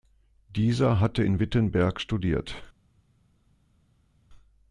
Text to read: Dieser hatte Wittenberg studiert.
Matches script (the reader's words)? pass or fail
fail